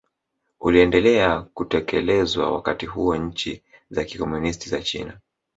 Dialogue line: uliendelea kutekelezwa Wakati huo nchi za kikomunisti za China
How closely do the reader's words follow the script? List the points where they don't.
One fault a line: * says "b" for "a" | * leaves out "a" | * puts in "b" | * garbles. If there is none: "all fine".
all fine